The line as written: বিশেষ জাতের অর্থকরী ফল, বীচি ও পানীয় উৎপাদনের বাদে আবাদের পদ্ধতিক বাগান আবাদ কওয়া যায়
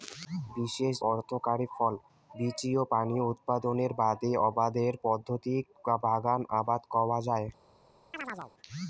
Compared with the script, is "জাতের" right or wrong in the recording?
wrong